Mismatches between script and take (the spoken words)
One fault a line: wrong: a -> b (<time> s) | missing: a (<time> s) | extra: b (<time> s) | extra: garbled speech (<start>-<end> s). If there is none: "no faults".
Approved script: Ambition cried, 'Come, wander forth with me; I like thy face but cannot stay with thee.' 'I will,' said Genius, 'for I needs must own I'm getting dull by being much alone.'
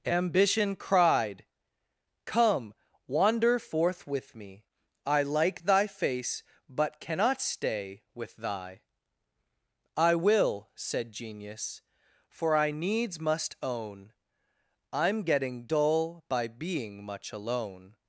wrong: thee -> thy (8.4 s)